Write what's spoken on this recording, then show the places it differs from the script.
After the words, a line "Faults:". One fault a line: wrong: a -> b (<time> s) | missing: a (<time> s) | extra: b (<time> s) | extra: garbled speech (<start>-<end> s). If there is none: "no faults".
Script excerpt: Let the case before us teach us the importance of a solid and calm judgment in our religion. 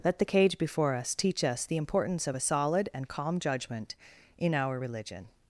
Let the cage before us teach us the importance of a solid and calm judgment in our religion.
Faults:
wrong: case -> cage (0.2 s)